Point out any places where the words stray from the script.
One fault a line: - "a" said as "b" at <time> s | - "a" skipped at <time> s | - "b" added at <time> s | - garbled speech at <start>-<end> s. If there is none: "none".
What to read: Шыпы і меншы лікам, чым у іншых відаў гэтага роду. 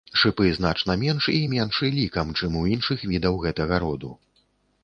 - "значна менш" added at 0.6 s